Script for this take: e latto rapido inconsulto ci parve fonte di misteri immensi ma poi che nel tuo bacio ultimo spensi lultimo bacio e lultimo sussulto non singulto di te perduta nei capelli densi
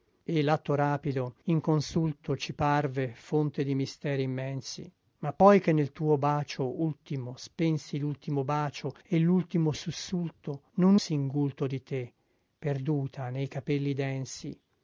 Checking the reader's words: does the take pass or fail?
pass